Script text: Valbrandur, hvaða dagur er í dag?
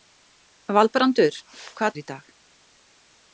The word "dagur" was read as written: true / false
false